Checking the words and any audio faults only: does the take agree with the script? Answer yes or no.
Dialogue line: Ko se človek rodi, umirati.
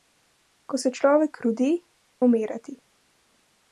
yes